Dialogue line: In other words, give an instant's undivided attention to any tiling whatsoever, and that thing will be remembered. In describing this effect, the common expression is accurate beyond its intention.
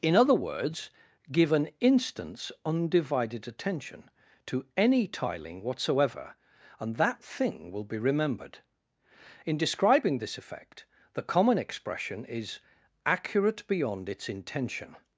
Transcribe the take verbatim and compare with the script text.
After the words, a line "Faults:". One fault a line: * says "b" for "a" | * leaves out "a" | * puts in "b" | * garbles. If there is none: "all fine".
In other words, give an instant's undivided attention to any tiling whatsoever, and that thing will be remembered. In describing this effect, the common expression is accurate beyond its intention.
Faults:
all fine